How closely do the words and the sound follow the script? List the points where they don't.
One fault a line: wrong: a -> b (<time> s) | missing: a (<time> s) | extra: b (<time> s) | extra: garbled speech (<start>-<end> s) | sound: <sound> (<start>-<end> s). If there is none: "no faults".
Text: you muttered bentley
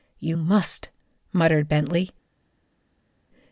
extra: must (0.3 s)